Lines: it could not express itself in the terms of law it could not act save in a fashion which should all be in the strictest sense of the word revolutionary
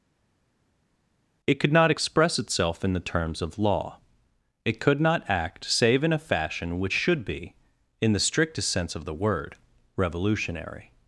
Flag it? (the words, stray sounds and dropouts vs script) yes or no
yes